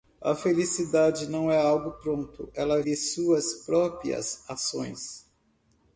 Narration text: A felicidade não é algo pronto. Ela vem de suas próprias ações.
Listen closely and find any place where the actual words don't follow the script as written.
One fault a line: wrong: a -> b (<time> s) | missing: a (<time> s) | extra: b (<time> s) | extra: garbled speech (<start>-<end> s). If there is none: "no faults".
missing: vem (2.8 s)